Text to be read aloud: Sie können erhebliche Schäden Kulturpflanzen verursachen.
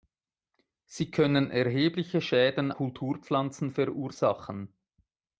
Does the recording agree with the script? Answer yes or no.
yes